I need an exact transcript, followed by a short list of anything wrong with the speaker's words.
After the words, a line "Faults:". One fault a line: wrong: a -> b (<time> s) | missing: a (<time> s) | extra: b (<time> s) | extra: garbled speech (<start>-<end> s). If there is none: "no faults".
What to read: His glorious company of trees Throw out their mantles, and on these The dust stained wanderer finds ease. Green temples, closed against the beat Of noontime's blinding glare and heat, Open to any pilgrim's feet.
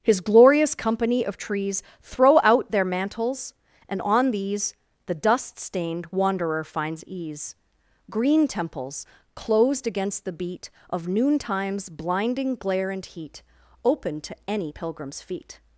His glorious company of trees Throw out their mantles, and on these The dust stained wanderer finds ease. Green temples, closed against the beat Of noontime's blinding glare and heat, Open to any pilgrim's feet.
Faults:
no faults